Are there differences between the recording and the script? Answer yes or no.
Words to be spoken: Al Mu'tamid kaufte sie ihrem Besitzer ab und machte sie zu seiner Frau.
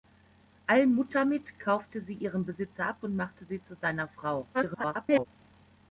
yes